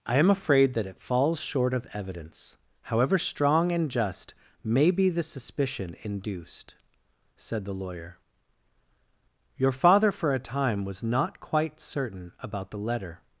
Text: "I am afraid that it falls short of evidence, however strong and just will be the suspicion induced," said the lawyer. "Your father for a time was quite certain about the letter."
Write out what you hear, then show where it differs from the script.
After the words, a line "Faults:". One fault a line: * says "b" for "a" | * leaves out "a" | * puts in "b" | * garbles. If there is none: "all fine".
"I am afraid that it falls short of evidence, however strong and just may be the suspicion induced," said the lawyer. "Your father for a time was not quite certain about the letter."
Faults:
* says "may" for "will"
* puts in "not"